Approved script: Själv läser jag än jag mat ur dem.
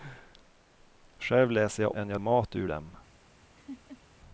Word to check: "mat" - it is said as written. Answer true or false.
true